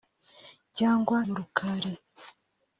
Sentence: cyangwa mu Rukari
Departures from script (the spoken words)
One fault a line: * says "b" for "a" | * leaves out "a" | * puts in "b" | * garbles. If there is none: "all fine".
all fine